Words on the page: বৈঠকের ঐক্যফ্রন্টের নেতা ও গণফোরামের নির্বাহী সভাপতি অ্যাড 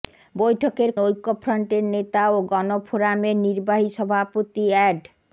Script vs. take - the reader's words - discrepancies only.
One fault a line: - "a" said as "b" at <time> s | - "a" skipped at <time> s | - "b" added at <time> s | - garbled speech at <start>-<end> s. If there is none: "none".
none